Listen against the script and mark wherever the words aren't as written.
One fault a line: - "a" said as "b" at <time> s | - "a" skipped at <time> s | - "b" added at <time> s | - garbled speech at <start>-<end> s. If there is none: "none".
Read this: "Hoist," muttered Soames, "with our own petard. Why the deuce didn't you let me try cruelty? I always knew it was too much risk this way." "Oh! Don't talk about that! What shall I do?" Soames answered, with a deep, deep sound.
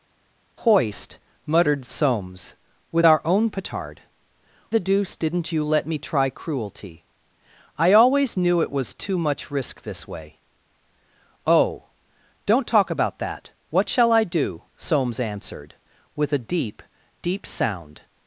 - "Why" skipped at 4.0 s